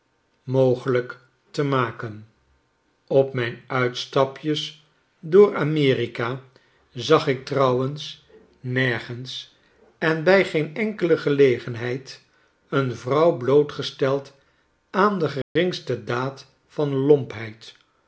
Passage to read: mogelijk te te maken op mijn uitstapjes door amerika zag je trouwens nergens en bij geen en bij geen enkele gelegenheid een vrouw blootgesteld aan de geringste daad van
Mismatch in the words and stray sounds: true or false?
true